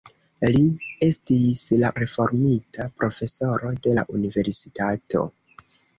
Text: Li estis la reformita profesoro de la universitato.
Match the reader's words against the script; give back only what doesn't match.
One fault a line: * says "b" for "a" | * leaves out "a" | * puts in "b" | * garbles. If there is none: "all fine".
all fine